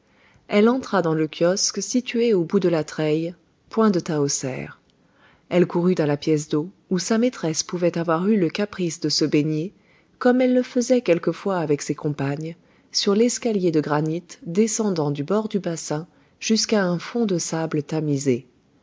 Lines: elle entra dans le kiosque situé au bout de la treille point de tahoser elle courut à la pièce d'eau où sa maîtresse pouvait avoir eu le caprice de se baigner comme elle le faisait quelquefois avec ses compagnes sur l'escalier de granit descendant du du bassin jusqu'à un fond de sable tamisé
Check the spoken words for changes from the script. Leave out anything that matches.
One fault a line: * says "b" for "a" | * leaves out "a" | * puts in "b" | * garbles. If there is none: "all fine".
* puts in "bord"